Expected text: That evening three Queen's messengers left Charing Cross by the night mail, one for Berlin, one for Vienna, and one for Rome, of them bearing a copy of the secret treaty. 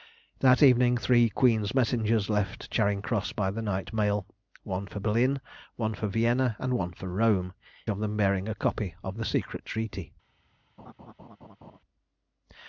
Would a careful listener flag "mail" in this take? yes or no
no